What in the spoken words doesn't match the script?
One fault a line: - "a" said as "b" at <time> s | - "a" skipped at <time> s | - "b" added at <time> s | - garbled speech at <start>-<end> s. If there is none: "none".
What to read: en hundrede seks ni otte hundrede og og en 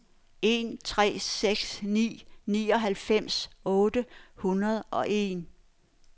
- "hundrede" said as "tre" at 0.8 s
- "nioghalvfems" added at 2.5 s
- "og" skipped at 5.0 s